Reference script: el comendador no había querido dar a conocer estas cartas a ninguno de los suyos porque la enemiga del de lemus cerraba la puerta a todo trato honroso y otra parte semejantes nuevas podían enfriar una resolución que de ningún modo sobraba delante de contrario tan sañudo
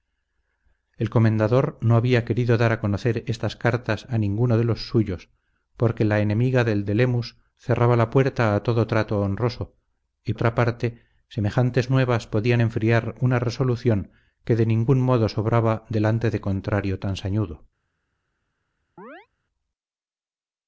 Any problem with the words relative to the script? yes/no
no